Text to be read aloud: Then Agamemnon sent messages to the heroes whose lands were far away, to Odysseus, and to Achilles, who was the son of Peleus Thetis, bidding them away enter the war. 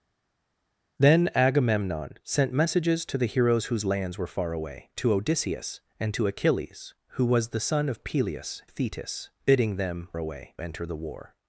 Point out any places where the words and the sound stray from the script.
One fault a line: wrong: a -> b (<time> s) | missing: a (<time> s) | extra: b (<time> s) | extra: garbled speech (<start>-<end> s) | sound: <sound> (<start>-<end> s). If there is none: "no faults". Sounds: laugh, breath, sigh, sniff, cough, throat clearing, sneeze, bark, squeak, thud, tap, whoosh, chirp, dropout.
no faults